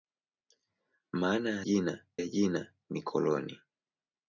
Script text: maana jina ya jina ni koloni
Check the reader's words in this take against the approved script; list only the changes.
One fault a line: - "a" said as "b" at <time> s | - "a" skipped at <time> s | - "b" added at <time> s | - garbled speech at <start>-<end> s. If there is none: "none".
none